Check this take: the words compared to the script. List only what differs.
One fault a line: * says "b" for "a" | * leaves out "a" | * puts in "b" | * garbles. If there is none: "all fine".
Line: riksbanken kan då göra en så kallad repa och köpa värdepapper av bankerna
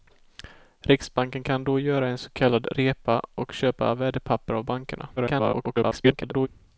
* garbles